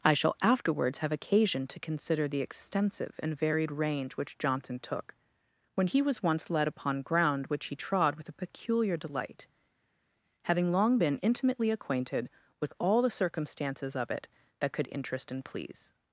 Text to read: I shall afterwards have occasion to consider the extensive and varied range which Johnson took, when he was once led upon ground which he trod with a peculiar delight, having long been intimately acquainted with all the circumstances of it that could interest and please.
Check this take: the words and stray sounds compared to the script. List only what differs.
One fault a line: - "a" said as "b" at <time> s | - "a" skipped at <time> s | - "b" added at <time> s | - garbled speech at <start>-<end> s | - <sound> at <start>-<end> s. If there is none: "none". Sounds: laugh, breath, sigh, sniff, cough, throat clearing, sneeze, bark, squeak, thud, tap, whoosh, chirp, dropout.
none